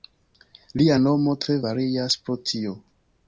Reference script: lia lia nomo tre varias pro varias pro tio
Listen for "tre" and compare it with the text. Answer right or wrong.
right